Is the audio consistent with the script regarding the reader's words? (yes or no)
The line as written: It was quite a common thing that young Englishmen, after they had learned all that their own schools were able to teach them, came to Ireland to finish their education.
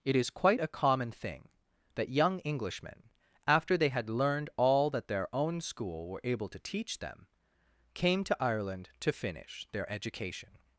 no